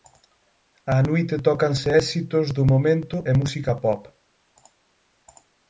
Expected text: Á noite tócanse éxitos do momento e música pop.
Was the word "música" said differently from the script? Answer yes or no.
no